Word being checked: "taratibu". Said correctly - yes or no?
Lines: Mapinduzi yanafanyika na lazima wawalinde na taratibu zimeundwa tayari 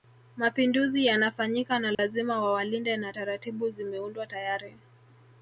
yes